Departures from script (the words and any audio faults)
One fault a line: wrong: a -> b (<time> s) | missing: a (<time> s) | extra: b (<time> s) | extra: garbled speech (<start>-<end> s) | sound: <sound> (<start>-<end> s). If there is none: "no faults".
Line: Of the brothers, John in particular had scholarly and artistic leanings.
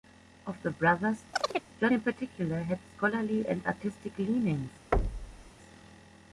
sound: chirp (1.3-1.7 s)
sound: thud (4.9-5.5 s)